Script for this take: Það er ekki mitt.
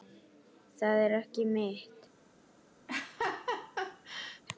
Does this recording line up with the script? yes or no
yes